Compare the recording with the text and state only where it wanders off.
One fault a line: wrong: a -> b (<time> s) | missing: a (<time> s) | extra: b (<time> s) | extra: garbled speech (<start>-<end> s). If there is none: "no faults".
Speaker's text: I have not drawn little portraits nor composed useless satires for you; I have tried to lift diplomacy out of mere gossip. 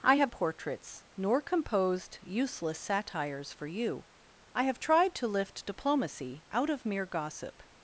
missing: not drawn little (0.3 s)